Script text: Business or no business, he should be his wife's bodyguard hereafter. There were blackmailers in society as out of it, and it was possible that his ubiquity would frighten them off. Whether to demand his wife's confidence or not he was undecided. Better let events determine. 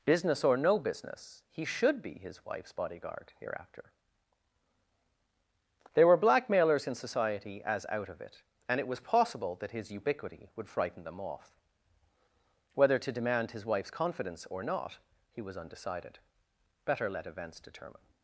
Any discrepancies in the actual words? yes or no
no